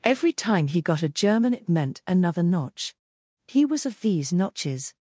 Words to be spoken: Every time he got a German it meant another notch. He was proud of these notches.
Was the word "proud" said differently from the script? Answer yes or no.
yes